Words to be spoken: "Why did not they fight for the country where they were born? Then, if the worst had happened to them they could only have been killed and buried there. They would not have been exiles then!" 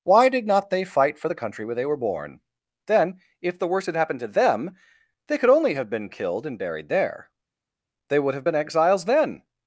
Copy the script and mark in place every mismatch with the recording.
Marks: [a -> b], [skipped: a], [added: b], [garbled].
"Why did not they fight for the country where they were born? Then, if the worst had happened to them they could only have been killed and buried there. They would [skipped: not] have been exiles then!"